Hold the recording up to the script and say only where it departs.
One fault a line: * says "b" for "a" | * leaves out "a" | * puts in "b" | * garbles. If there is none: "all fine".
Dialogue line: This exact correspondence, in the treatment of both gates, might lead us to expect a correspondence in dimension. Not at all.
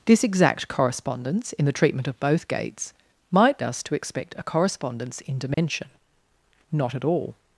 * leaves out "lead"